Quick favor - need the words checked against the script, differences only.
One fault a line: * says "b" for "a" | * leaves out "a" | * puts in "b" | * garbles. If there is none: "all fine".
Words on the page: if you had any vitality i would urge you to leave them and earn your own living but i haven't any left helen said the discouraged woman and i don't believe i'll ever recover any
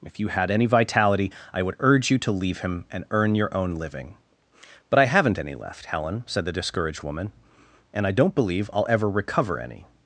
* says "him" for "them"